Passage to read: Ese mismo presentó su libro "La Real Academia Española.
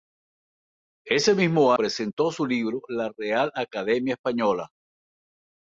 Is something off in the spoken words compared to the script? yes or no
no